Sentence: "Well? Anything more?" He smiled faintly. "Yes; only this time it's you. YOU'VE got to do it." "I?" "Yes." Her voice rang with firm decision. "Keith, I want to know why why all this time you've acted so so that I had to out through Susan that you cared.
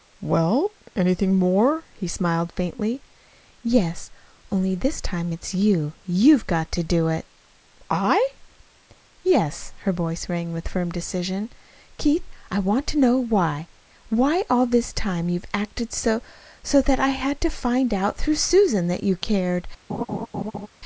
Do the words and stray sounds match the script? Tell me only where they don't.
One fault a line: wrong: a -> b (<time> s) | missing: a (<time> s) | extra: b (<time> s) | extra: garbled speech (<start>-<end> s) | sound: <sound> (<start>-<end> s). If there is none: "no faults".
extra: find (17.5 s)
sound: laugh (19.9-20.7 s)